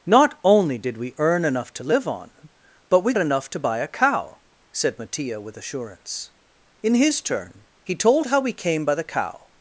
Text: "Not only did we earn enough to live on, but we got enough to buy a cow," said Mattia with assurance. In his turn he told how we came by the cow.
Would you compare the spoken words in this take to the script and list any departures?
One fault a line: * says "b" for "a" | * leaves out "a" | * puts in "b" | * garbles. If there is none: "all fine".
* leaves out "got"